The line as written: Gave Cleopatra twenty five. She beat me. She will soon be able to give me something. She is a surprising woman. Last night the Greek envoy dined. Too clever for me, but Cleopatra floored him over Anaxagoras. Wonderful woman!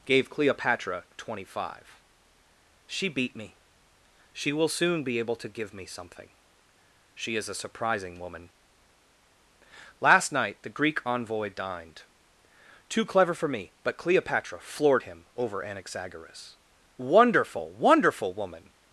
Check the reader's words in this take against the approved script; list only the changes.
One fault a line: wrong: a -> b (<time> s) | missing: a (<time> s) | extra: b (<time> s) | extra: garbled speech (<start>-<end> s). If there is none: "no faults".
extra: Wonderful (17.7 s)